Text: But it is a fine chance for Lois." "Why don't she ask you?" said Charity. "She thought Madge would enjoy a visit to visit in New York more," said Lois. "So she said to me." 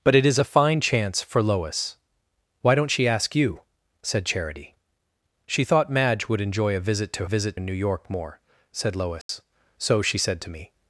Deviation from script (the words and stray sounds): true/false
true